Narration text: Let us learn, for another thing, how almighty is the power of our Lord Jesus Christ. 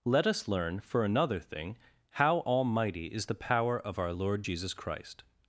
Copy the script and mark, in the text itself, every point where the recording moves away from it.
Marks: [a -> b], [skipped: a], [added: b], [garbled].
Let us learn, for another thing, how almighty is the power of our Lord Jesus Christ.